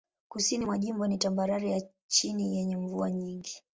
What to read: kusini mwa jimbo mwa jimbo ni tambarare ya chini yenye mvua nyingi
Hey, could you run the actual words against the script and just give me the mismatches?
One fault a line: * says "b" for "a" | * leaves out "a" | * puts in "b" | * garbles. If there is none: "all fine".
* leaves out "mwa jimbo"